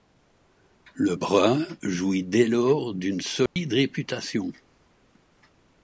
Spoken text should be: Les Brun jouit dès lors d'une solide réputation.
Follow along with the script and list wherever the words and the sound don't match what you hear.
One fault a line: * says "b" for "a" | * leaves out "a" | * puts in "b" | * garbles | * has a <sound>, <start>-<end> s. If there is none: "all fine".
* says "Le" for "Les"
* has a dropout, 3.5-3.6 s